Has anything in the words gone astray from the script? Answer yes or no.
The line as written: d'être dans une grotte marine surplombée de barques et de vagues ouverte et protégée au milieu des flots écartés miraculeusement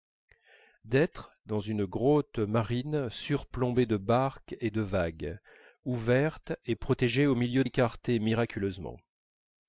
yes